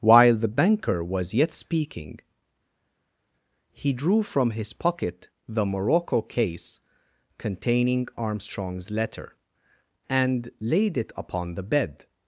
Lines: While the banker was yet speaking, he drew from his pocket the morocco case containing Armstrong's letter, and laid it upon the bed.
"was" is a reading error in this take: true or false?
false